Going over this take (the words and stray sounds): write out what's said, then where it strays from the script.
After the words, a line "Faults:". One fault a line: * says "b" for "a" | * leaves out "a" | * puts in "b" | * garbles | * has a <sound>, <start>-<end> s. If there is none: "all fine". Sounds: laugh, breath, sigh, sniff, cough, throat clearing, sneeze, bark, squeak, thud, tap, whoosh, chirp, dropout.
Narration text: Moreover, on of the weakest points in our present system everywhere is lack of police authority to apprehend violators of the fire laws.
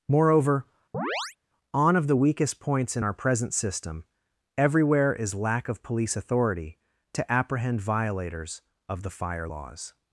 Moreover, on of the weakest points in our present system everywhere is lack of police authority to apprehend violators of the fire laws.
Faults:
* has a chirp, 0.9-1.4 s